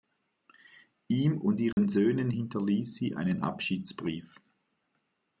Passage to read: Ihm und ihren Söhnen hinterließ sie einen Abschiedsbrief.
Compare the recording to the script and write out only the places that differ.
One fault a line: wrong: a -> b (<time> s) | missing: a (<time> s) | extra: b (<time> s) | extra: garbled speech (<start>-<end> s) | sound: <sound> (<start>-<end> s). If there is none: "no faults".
sound: dropout (1.7-1.8 s)